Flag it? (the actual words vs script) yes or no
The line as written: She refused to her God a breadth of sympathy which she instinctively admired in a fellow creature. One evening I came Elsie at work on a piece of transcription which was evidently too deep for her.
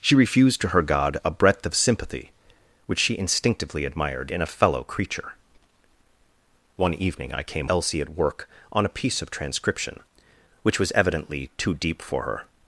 no